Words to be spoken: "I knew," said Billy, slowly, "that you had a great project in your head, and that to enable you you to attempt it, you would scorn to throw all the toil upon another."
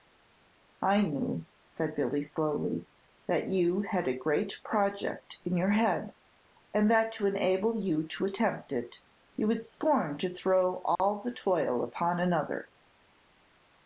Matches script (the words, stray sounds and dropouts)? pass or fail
fail